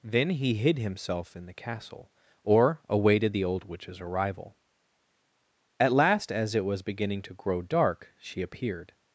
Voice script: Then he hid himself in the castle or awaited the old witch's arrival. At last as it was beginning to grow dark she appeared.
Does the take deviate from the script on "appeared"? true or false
false